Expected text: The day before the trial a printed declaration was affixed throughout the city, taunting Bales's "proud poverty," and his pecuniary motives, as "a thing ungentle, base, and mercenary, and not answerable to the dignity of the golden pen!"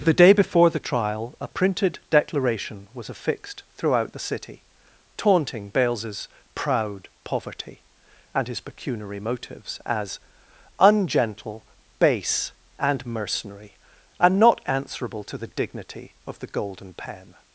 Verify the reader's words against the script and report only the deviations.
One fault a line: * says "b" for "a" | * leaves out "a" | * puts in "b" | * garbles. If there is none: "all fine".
* leaves out "a thing"